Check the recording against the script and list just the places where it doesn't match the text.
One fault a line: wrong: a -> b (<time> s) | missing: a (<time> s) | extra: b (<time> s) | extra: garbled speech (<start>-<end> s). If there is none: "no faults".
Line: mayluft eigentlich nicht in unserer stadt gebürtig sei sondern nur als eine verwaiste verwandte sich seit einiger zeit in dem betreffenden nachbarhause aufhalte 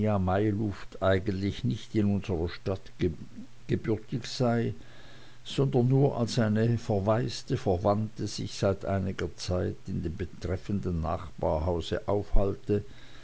no faults